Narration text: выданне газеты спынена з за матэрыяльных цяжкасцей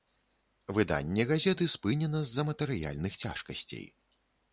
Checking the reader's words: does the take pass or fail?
pass